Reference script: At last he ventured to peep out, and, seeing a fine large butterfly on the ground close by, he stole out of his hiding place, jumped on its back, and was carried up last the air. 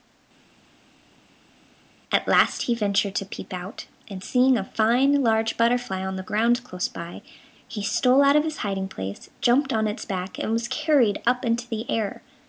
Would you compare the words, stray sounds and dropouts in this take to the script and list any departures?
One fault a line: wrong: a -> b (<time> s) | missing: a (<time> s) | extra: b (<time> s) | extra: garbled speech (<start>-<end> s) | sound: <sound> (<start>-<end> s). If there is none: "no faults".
wrong: last -> into (11.4 s)